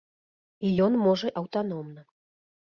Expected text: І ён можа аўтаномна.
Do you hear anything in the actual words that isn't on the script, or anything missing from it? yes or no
no